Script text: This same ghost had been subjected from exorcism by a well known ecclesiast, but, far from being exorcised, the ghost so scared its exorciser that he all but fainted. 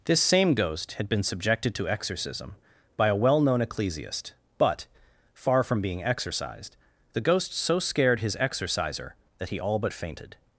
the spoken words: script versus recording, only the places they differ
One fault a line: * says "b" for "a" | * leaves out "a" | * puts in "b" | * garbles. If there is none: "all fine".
* says "to" for "from"
* says "his" for "its"